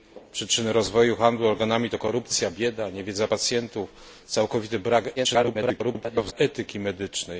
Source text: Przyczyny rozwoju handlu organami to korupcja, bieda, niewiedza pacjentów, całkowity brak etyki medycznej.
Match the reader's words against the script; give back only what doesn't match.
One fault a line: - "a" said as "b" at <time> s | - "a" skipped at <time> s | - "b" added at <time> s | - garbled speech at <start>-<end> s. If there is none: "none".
- garbled speech at 5.2-6.3 s